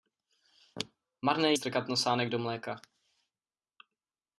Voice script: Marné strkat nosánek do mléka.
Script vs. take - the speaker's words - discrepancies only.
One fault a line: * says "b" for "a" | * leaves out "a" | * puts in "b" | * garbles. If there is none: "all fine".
all fine